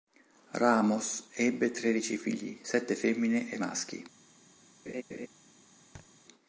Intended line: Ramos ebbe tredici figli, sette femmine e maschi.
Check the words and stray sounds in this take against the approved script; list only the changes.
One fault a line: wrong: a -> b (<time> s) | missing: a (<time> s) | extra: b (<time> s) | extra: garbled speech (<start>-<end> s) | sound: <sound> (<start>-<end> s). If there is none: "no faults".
sound: laugh (4.9-5.3 s)
sound: thud (5.9-6.1 s)